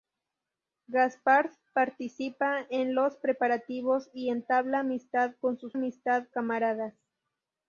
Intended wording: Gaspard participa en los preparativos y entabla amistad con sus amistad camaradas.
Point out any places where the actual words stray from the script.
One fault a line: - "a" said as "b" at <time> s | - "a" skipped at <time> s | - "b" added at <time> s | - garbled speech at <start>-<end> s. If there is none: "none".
none